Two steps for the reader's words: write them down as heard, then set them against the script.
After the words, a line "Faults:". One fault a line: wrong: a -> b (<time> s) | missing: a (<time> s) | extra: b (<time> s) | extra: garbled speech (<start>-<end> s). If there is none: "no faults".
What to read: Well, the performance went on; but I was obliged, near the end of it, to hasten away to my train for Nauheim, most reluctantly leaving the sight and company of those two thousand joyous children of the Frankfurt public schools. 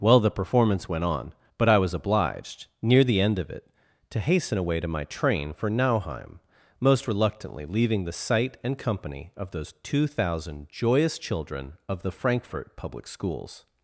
Well, the performance went on; but I was obliged, near the end of it, to hasten away to my train for Nauheim, most reluctantly leaving the sight and company of those two thousand joyous children of the Frankfurt public schools.
Faults:
no faults